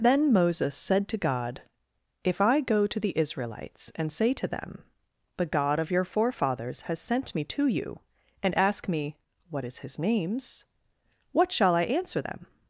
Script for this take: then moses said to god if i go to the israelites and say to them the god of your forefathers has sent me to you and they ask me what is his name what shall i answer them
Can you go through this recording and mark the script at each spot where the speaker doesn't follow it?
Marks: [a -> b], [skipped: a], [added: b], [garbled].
then moses said to god if i go to the israelites and say to them the god of your forefathers has sent me to you and [skipped: they] ask me what is his [name -> names] what shall i answer them